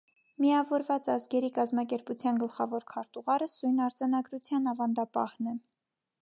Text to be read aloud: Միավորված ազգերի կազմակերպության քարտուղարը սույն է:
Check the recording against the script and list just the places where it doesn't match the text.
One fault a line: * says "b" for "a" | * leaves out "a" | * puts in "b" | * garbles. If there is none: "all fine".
* puts in "գլխավոր"
* puts in "արձանագրության ավանդապահն"